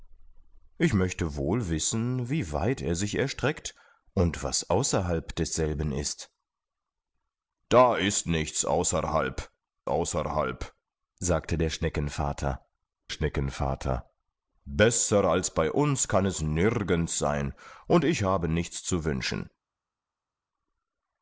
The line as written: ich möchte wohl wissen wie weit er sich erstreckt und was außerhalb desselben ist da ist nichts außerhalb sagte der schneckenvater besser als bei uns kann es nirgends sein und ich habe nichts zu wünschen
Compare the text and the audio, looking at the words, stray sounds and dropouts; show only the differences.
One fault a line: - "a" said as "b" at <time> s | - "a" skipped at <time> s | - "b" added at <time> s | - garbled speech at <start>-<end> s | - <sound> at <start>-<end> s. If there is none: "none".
- "außerhalb" added at 9.9 s
- "schneckenvater" added at 13.1 s